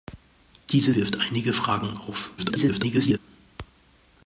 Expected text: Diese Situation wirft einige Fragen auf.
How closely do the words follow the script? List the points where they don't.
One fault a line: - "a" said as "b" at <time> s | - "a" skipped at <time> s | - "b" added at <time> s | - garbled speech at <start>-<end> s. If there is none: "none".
- "Situation" skipped at 0.9 s
- garbled speech at 2.4-3.2 s